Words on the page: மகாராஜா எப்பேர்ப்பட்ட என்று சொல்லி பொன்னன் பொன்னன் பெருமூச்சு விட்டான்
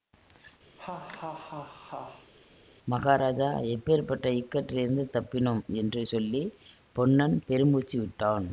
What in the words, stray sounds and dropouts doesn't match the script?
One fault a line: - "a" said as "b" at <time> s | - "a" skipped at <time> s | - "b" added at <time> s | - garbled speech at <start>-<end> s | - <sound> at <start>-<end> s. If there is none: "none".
- laugh at 0.8-2.3 s
- "இக்கட்டிலிருந்து தப்பினோம்" added at 4.3 s
- "பொன்னன்" skipped at 7.4 s